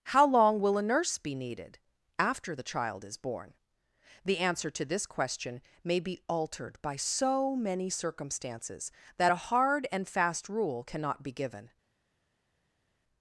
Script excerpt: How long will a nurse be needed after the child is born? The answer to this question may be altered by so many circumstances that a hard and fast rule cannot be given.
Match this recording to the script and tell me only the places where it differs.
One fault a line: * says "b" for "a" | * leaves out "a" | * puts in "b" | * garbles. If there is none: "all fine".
all fine